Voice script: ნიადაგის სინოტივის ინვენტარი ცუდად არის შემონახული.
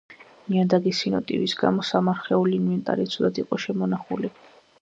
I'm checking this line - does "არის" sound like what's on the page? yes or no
no